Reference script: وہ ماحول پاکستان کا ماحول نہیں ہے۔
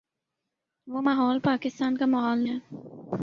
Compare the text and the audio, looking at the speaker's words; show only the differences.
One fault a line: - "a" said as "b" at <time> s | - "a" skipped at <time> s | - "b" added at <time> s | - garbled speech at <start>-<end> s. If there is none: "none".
- "نہیں" skipped at 2.4 s